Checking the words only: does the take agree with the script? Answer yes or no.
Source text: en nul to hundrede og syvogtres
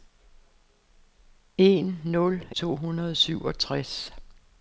yes